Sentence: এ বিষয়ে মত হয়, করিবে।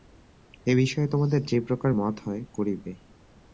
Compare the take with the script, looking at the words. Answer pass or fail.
fail